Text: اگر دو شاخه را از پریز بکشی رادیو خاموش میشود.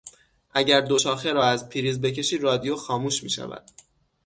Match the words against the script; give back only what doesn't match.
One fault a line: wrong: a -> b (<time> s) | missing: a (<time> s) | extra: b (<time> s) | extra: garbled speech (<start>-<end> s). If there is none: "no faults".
no faults